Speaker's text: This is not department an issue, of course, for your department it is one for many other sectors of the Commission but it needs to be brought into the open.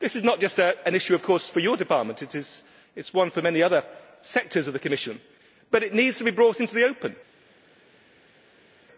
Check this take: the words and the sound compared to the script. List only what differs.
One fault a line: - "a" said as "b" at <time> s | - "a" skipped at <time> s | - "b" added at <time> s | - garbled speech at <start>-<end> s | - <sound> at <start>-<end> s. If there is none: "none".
- "department" said as "just" at 0.4 s